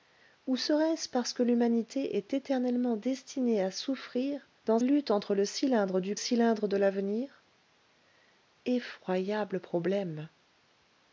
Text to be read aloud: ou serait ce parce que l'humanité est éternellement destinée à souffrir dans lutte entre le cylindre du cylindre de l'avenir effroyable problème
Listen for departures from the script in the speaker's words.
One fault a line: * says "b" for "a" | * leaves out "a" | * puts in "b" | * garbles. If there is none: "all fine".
all fine